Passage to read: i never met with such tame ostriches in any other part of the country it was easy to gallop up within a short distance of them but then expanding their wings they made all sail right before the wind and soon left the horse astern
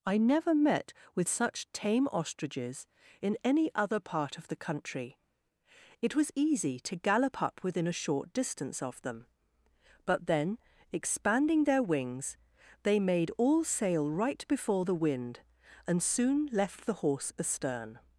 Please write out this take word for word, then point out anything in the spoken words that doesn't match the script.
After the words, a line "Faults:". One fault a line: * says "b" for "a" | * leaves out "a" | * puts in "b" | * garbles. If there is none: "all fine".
i never met with such tame ostriches in any other part of the country it was easy to gallop up within a short distance of them but then expanding their wings they made all sail right before the wind and soon left the horse astern
Faults:
all fine